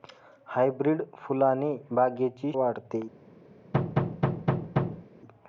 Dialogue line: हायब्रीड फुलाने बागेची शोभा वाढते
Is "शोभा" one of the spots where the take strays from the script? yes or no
yes